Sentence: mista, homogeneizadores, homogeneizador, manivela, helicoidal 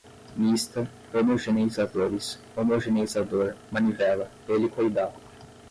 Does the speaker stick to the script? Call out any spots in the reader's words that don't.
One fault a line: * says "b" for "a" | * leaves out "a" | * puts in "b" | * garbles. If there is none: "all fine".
all fine